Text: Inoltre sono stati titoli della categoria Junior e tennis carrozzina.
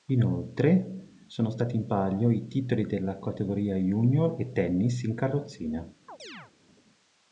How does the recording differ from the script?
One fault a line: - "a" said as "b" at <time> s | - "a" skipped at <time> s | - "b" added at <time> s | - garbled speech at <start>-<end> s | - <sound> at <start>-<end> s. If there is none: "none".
- "in palio i" added at 1.8 s
- "in" added at 5.0 s
- chirp at 6.1-6.5 s